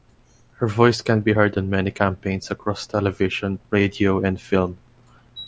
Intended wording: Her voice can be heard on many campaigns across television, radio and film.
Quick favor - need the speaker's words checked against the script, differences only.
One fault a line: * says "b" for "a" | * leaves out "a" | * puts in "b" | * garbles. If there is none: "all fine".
all fine